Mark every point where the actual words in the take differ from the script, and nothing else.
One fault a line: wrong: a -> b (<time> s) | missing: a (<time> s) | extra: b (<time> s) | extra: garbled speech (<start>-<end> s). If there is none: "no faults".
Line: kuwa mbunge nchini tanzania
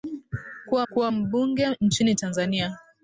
extra: kuwa (0.9 s)